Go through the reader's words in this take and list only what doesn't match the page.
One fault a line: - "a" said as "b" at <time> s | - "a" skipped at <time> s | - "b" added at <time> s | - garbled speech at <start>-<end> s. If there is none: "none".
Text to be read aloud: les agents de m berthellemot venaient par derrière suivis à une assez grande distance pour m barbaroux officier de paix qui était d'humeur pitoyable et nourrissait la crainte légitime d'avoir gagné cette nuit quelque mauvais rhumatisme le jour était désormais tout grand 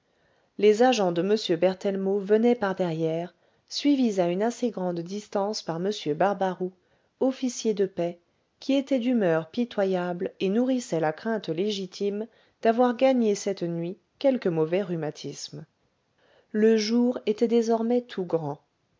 - "pour" said as "par" at 5.6 s